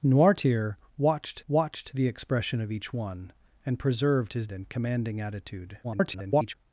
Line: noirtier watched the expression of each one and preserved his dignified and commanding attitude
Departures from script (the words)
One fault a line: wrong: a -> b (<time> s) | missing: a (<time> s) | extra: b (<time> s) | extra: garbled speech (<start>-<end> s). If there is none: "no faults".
extra: watched (1.5 s)
missing: dignified (4.5 s)
extra: garbled speech (5.8-6.5 s)